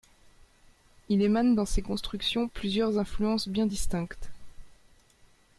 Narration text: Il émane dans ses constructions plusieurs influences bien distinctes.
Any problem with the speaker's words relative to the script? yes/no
no